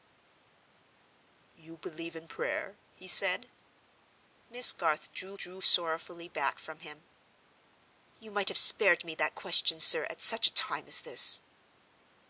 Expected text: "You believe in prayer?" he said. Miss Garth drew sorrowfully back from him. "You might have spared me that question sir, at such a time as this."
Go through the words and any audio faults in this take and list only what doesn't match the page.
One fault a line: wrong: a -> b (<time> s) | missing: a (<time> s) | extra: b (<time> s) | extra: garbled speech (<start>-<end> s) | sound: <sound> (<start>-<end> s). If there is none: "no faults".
extra: drew (5.4 s)